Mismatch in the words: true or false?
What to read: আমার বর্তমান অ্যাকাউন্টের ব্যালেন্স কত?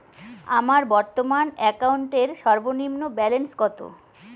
true